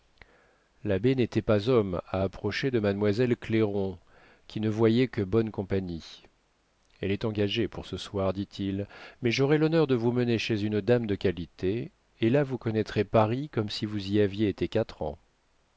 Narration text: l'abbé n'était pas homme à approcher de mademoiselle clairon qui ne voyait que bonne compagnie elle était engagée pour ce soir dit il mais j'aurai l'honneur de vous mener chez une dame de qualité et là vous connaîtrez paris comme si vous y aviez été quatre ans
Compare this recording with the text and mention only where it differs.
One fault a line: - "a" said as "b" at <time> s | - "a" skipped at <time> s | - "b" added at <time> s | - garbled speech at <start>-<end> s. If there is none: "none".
- "était" said as "est" at 7.1 s